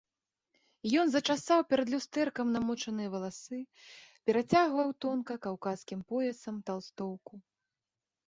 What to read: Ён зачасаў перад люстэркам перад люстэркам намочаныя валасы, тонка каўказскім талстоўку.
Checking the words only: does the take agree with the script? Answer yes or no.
no